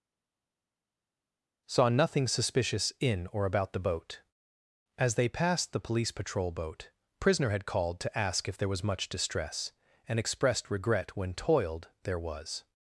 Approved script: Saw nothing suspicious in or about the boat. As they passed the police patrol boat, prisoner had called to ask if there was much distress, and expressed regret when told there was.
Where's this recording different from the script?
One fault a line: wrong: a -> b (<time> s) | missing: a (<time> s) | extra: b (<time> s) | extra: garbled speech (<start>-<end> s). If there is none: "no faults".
wrong: told -> toiled (11.3 s)